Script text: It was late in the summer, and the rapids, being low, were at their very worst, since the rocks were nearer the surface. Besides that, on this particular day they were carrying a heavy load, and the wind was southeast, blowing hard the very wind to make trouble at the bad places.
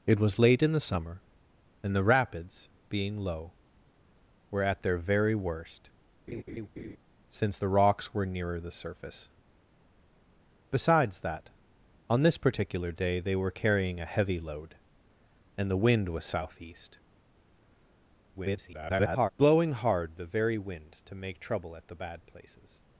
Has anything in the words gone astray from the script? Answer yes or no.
yes